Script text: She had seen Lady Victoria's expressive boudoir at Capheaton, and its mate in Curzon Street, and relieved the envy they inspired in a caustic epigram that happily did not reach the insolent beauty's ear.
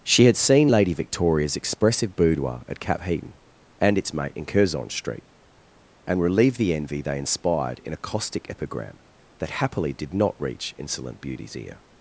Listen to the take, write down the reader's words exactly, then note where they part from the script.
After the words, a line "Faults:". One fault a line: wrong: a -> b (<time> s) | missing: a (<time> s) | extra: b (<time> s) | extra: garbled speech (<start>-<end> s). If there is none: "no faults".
She had seen Lady Victoria's expressive boudoir at Capheaton, and its mate in Curzon Street, and relieved the envy they inspired in a caustic epigram that happily did not reach insolent beauty's ear.
Faults:
missing: the (10.7 s)